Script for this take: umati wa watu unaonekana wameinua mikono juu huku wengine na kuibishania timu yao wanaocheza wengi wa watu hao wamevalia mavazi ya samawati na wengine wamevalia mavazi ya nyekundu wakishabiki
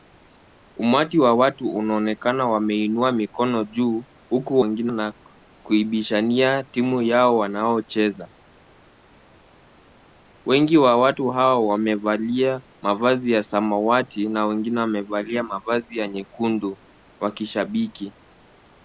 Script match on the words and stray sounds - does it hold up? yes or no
yes